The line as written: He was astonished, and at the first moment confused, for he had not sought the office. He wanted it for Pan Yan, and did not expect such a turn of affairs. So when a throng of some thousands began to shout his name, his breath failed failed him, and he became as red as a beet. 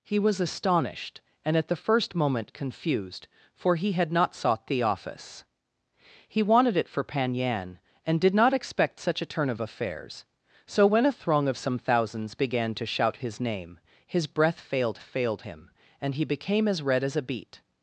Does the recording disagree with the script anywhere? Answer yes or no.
no